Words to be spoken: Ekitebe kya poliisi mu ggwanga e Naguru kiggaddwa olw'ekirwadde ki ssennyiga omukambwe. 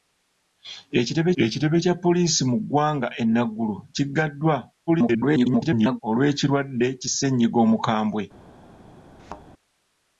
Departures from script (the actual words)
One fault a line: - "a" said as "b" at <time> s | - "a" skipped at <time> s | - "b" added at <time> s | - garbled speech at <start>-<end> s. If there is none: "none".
- "ekitebe" added at 1.4 s
- garbled speech at 4.9-6.0 s